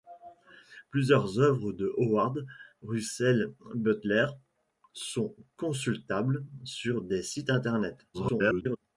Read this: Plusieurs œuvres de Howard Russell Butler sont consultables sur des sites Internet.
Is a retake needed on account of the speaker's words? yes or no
yes